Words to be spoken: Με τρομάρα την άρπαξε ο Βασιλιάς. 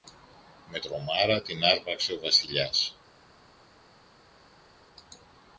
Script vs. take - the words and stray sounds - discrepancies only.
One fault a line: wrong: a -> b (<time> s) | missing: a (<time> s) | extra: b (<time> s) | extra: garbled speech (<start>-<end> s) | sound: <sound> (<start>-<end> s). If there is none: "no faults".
no faults